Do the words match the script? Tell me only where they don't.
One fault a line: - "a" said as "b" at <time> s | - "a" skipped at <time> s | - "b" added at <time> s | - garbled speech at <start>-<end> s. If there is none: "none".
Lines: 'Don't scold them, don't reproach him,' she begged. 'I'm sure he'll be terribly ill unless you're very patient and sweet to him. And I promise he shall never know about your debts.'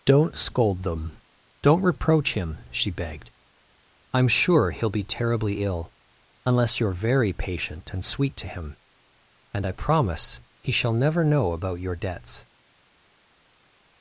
none